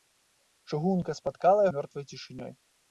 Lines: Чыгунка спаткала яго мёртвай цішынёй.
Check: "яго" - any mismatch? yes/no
yes